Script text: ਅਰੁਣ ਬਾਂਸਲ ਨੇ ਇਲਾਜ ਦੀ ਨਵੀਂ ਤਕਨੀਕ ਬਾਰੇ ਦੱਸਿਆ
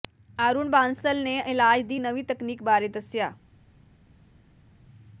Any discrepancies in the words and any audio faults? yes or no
no